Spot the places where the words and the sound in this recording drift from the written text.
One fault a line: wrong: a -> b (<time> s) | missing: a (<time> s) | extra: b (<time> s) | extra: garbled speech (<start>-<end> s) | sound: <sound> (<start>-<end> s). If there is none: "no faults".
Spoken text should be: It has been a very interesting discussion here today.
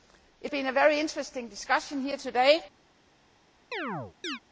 missing: has (0.5 s)
sound: chirp (3.7-4.4 s)